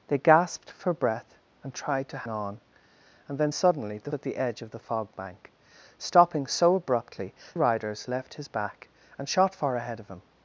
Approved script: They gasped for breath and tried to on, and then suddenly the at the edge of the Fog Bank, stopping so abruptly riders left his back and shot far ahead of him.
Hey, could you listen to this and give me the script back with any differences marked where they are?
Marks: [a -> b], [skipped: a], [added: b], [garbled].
They gasped for breath and tried to on, and then suddenly the at the edge of the Fog Bank, stopping so abruptly riders left his back and shot far ahead of him.